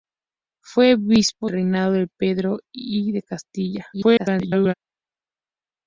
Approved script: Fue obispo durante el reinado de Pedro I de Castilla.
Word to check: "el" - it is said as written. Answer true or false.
false